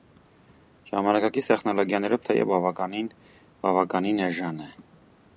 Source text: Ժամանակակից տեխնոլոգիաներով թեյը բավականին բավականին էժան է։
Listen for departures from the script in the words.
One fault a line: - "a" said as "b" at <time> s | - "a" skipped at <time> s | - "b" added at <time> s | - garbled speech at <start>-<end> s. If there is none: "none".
none